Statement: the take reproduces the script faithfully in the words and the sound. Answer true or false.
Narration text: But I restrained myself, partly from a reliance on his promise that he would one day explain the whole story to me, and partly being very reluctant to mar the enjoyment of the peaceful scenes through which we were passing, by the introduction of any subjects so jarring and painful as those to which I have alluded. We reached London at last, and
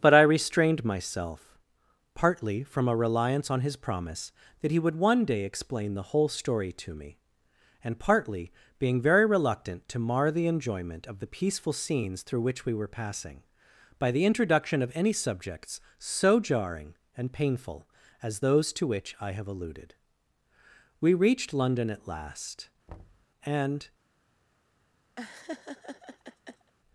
false